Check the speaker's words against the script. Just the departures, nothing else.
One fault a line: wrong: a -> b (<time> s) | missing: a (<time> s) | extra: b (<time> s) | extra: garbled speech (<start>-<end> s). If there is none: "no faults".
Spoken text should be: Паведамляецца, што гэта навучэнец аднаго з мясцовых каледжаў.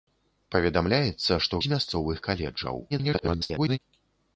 missing: гэта навучэнец аднаго (1.6 s)
extra: garbled speech (2.9-3.8 s)